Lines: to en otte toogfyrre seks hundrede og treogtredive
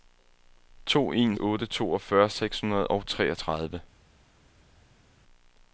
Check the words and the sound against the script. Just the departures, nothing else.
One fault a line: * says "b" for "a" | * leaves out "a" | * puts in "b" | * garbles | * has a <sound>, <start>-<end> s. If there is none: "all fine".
all fine